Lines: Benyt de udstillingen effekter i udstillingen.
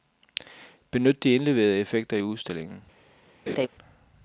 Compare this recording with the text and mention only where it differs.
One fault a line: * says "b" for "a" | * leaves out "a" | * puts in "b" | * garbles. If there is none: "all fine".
* says "indleverede" for "udstillingen"